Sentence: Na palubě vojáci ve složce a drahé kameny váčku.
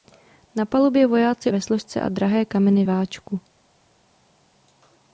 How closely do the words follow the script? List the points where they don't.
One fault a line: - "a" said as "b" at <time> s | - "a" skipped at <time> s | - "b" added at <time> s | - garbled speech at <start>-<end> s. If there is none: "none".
none